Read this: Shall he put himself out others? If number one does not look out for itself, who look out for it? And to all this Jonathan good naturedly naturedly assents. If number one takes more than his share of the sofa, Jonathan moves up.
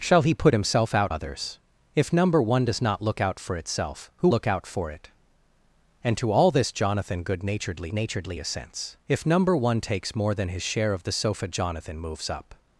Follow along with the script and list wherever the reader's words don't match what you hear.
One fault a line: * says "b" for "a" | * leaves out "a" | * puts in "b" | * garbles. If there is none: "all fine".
all fine